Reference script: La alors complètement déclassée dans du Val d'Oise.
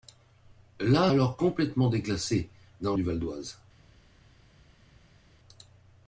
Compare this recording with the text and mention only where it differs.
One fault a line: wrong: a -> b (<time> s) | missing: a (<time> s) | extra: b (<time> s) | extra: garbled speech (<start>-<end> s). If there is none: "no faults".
no faults